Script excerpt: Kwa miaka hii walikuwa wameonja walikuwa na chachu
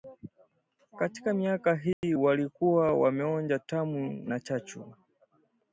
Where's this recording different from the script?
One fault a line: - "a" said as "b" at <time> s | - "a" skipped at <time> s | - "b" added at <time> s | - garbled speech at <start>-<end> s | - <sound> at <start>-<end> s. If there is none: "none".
- "Kwa" said as "Katika" at 1.0 s
- dropout at 1.9-2.0 s
- "walikuwa" said as "tamu" at 3.6 s